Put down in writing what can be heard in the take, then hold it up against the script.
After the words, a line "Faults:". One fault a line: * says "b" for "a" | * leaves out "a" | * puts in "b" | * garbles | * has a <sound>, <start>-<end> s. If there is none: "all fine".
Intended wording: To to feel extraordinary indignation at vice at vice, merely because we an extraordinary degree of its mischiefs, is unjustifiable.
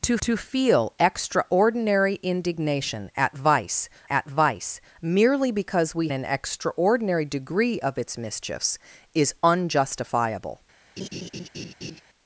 To to feel extraordinary indignation at vice at vice, merely because we an extraordinary degree of its mischiefs, is unjustifiable.
Faults:
* has a laugh, 11.0-12.0 s